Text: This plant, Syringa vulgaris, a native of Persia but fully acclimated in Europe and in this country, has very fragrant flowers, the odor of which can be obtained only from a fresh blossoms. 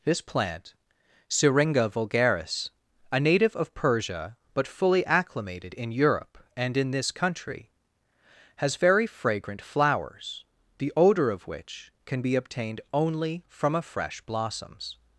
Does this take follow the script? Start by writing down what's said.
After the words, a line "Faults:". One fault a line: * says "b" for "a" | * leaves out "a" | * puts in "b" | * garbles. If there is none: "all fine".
This plant, Syringa vulgaris, a native of Persia but fully acclimated in Europe and in this country, has very fragrant flowers, the odor of which can be obtained only from a fresh blossoms.
Faults:
all fine